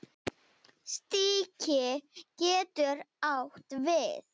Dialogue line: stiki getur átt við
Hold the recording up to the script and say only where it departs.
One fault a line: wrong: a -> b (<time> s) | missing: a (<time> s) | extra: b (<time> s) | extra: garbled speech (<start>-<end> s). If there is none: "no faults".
no faults